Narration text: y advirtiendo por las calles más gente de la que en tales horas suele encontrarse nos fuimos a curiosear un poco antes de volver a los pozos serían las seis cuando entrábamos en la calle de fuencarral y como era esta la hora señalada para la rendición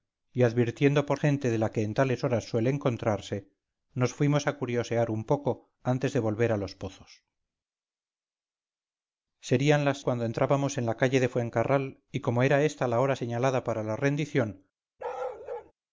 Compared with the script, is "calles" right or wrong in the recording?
wrong